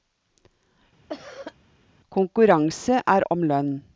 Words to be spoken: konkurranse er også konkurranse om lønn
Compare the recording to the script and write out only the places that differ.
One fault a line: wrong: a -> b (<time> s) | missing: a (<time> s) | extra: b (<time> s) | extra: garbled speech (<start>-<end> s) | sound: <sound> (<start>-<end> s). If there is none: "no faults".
sound: cough (1.1-1.5 s)
missing: også konkurranse (3.3 s)